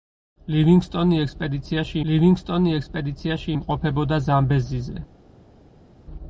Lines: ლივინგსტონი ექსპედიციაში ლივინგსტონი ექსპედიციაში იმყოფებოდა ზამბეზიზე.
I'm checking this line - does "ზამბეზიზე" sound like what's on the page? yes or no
yes